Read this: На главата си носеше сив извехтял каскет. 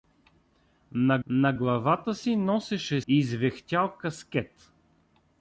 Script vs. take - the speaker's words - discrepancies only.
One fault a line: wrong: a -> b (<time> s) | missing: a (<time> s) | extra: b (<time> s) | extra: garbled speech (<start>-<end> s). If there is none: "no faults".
extra: на (1.3 s)
missing: сив (3.0 s)